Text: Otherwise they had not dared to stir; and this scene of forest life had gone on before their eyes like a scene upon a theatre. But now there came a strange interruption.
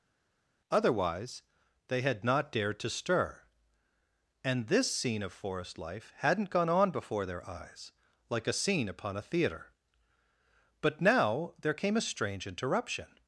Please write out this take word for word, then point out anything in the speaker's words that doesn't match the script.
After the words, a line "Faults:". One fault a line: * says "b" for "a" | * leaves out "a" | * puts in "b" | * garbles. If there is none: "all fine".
Otherwise they had not dared to stir; and this scene of forest life hadn't gone on before their eyes like a scene upon a theatre. But now there came a strange interruption.
Faults:
* says "hadn't" for "had"